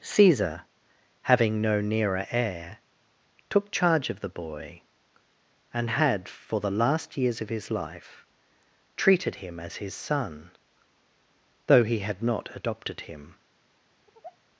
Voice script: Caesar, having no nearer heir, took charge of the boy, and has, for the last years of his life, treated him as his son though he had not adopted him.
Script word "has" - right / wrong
wrong